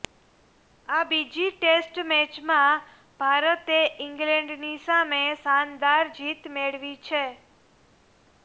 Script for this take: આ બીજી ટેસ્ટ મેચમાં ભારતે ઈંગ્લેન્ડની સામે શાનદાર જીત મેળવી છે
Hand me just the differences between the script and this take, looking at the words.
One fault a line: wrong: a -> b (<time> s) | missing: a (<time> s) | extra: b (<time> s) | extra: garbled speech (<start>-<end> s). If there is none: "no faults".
no faults